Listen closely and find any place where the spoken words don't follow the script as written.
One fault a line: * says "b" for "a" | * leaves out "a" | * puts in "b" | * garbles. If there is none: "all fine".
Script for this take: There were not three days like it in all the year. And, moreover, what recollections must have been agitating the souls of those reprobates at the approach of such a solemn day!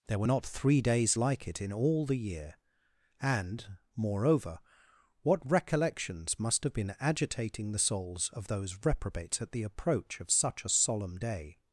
all fine